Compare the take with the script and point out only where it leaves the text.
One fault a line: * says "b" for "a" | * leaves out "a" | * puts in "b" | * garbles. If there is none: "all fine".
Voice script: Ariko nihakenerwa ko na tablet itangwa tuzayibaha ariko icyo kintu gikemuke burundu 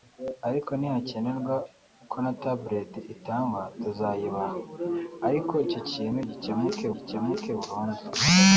* puts in "gikemuke"